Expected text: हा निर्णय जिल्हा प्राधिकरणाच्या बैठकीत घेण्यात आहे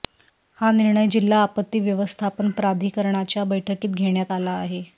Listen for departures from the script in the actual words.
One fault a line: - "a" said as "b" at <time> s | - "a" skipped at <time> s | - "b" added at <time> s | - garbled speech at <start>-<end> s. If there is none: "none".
- "आपत्ती व्यवस्थापन" added at 1.4 s
- "आला" added at 4.3 s